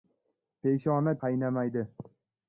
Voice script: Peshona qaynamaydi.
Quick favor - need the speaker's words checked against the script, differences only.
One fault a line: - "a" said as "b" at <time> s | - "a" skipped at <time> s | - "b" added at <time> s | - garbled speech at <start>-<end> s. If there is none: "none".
none